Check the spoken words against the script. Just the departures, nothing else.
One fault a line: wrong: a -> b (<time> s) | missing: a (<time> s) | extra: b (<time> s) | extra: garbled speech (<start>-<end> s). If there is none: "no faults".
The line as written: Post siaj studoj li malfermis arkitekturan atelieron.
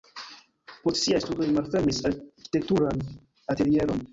no faults